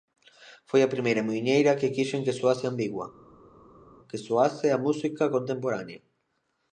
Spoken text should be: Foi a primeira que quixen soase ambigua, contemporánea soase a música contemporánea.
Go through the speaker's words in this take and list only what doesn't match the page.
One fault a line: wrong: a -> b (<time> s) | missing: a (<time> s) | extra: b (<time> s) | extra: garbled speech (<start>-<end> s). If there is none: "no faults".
extra: muiñeira (1.3 s)
extra: que (2.2 s)
wrong: contemporánea -> que (4.1 s)